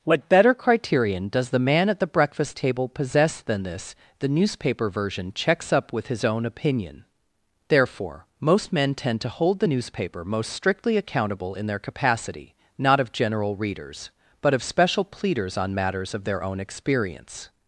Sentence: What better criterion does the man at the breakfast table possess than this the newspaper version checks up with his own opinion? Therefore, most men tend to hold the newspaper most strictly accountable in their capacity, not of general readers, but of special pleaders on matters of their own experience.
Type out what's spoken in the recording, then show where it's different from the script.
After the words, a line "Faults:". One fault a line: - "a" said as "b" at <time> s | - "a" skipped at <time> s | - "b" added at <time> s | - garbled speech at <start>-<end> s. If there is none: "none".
What better criterion does the man at the breakfast table possess than this the newspaper version checks up with his own opinion? Therefore, most men tend to hold the newspaper most strictly accountable in their capacity, not of general readers, but of special pleaders on matters of their own experience.
Faults:
none